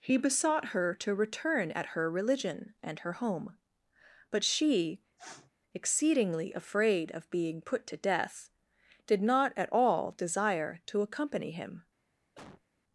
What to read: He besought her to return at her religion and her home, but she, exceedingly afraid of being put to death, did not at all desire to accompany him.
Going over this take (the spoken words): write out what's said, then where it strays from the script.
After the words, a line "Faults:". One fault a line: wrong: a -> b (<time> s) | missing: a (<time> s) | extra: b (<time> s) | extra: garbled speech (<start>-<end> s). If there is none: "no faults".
He besought her to return at her religion and her home, but she, exceedingly afraid of being put to death, did not at all desire to accompany him.
Faults:
no faults